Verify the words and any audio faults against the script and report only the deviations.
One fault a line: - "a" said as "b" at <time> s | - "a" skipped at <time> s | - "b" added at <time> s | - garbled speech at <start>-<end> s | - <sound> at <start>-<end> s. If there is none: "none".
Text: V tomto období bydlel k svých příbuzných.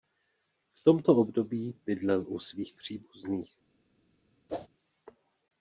- "k" said as "u" at 2.3 s
- whoosh at 4.5-4.7 s